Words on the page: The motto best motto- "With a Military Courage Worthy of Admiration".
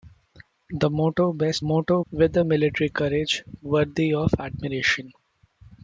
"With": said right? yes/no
yes